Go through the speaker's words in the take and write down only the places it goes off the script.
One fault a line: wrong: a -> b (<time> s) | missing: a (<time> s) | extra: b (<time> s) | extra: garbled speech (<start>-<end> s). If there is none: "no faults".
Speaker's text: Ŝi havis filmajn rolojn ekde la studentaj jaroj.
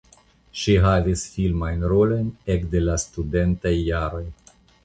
no faults